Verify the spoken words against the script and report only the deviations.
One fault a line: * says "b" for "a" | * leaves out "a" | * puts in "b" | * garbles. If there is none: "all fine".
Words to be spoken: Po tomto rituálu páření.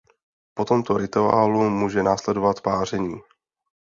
* puts in "může následovat"